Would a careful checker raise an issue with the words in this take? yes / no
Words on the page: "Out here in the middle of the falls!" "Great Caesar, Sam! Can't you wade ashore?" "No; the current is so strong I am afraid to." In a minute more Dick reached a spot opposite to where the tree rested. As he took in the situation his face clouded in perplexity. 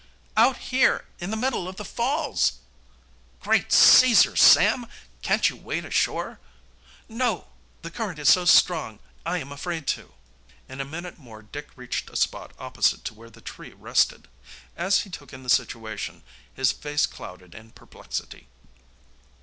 no